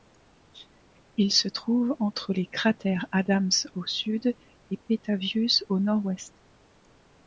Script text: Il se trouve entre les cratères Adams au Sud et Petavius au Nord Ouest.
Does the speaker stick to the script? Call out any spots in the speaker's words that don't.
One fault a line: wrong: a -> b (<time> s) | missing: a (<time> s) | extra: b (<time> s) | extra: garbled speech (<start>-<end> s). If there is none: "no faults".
no faults